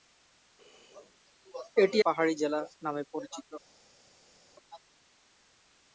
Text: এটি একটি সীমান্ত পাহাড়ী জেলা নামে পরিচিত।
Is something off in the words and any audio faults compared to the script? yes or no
yes